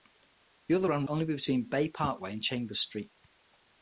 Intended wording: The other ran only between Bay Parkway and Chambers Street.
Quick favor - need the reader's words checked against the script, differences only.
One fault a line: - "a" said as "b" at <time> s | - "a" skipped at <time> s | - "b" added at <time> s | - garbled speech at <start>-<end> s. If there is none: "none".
none